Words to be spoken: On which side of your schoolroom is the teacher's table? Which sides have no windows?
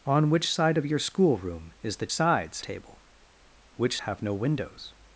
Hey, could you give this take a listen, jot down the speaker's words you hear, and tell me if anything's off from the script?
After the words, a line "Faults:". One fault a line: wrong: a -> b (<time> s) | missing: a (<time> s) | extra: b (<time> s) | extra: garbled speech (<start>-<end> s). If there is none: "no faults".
On which side of your schoolroom is the sides table? Which have no windows?
Faults:
wrong: teacher's -> sides (2.1 s)
missing: sides (4.0 s)